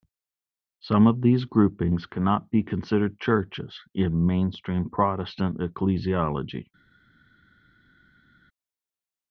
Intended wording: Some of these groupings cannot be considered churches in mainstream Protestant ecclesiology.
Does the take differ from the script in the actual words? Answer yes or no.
no